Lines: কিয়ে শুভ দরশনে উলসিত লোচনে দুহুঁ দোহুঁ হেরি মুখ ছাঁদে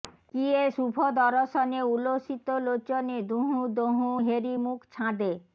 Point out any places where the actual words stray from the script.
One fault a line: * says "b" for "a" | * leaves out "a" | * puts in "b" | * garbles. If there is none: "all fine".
all fine